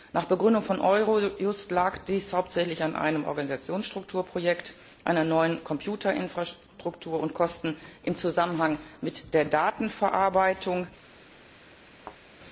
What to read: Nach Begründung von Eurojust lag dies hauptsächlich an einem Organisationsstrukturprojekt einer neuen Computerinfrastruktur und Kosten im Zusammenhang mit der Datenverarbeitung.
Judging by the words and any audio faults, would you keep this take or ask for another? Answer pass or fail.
fail